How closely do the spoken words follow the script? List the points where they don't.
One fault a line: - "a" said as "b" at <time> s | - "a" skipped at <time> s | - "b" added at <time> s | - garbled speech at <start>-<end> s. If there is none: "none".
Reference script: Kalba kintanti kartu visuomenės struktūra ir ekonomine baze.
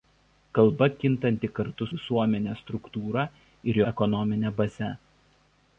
none